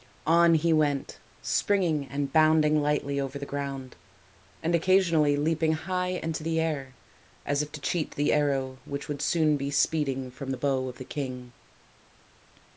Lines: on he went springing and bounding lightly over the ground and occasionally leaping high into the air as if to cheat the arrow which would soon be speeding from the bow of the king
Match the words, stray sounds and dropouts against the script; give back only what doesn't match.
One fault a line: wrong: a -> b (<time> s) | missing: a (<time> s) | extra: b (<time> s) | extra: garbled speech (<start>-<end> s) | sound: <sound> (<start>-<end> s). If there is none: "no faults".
no faults